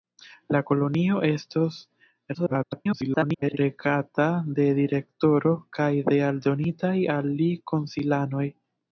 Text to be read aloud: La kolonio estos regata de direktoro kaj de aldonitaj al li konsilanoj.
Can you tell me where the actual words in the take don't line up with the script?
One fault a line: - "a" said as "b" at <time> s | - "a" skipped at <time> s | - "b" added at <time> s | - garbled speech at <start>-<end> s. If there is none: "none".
- garbled speech at 2.3-3.6 s